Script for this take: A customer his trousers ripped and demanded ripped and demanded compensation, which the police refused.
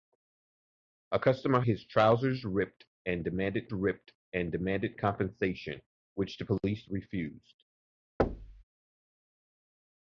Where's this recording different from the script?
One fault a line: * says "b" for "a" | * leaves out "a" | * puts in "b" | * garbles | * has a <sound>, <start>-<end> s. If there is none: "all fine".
* has a thud, 8.2-8.6 s